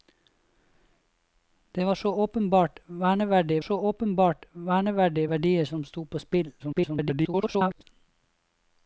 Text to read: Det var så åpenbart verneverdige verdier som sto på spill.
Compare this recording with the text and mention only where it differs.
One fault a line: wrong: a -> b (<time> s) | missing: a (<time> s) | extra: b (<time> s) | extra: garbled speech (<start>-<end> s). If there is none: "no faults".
extra: så åpenbart verneverdige (3.6 s)
extra: garbled speech (6.6-7.8 s)